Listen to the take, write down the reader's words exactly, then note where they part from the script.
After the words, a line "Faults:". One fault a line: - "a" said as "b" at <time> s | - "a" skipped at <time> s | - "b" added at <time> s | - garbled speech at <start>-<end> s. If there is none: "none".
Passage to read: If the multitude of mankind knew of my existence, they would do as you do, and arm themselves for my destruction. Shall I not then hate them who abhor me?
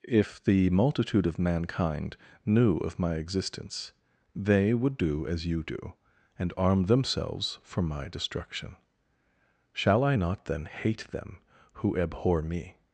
If the multitude of mankind knew of my existence, they would do as you do, and arm themselves for my destruction. Shall I not then hate them who abhor me?
Faults:
none